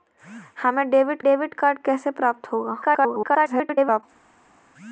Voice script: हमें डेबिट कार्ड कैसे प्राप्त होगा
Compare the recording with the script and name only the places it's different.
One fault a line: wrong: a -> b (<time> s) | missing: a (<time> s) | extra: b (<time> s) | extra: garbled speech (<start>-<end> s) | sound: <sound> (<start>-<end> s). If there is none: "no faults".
extra: डेबिट (1.2 s)
extra: garbled speech (2.8-4.0 s)